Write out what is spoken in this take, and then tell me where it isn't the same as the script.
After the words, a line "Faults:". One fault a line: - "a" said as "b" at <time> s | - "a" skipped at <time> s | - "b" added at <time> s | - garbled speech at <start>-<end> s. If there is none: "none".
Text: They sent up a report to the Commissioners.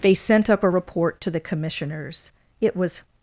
They sent up a report to the Commissioners. It was
Faults:
- "It was" added at 2.6 s